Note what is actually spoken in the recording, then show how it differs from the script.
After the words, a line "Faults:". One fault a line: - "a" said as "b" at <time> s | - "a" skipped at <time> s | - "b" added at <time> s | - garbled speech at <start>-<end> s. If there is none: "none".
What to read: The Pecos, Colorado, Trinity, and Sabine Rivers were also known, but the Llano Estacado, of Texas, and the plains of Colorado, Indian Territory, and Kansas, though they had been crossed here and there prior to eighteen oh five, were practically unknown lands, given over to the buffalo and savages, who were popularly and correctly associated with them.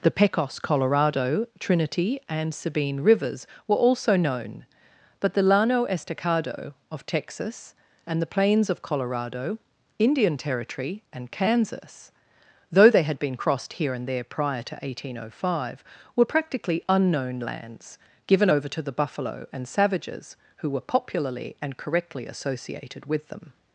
The Pecos, Colorado, Trinity, and Sabine Rivers were also known, but the Llano Estacado, of Texas, and the plains of Colorado, Indian Territory, and Kansas, though they had been crossed here and there prior to eighteen oh five, were practically unknown lands, given over to the buffalo and savages, who were popularly and correctly associated with them.
Faults:
none